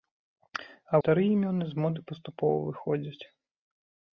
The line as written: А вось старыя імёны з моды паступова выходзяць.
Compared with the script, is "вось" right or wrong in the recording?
wrong